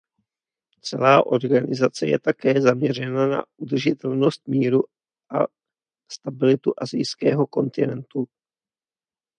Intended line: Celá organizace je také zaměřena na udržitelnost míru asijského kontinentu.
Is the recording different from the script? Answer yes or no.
yes